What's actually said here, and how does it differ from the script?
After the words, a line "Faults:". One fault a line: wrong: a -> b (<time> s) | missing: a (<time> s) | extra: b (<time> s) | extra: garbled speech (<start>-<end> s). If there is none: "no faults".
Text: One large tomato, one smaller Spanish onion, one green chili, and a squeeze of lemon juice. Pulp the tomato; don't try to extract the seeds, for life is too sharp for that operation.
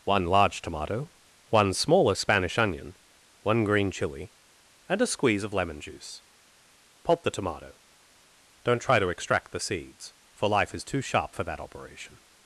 One large tomato, one smaller Spanish onion, one green chili, and a squeeze of lemon juice. Pulp the tomato; don't try to extract the seeds, for life is too sharp for that operation.
Faults:
no faults